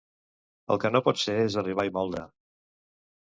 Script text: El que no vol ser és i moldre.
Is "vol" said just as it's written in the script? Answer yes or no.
no